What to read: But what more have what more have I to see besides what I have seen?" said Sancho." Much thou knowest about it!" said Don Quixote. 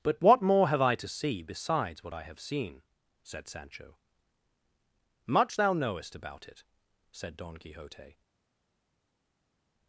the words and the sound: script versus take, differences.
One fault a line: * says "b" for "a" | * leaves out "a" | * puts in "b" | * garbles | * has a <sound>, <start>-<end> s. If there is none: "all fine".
* leaves out "what more have"